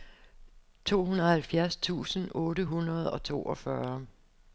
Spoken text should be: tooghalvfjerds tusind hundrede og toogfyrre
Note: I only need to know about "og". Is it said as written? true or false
true